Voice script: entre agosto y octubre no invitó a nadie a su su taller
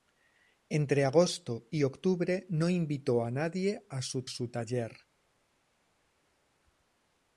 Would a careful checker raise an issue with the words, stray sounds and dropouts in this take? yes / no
no